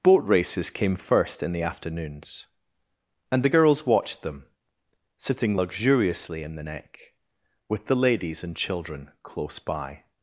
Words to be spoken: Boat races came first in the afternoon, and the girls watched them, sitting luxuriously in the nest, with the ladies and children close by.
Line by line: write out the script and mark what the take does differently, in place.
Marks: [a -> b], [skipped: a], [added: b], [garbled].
Boat races came first in the [afternoon, -> afternoons] and the girls watched them, sitting luxuriously in the [nest, -> neck] with the ladies and children close by.